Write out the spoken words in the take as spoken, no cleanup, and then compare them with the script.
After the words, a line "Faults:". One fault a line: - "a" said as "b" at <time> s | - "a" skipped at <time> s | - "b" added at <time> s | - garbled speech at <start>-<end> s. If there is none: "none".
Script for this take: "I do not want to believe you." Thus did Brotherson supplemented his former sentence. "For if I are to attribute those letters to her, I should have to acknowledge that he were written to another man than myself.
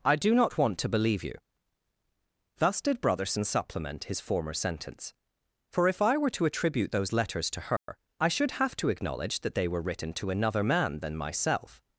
"I do not want to believe you." Thus did Brotherson supplement his former sentence. "For if I were to attribute those letters to her, I should have to acknowledge that they were written to another man than myself.
Faults:
- "supplemented" said as "supplement" at 3.4 s
- "are" said as "were" at 6.2 s
- "he" said as "they" at 9.6 s